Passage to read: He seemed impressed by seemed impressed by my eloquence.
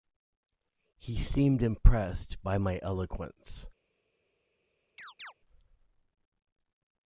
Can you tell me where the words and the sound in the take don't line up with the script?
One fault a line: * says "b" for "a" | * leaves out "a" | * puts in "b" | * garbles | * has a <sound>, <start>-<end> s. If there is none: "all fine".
* leaves out "seemed impressed by"
* has a chirp, 5.0-5.3 s